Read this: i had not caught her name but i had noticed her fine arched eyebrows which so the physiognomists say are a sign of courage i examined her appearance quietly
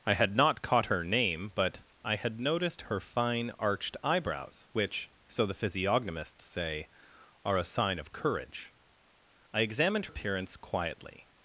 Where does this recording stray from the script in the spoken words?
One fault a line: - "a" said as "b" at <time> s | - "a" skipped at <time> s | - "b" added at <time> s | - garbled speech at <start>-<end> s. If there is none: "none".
- "her" skipped at 10.1 s